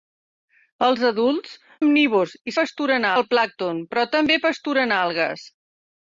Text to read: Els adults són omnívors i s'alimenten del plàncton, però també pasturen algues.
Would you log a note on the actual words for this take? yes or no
yes